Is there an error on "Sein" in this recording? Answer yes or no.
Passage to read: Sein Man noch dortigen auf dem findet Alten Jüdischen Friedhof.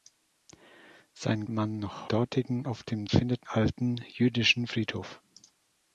no